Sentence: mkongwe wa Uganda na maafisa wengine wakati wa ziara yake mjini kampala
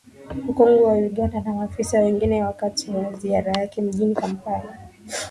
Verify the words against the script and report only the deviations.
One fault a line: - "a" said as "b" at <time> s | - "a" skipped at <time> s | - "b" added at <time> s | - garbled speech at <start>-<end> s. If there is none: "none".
none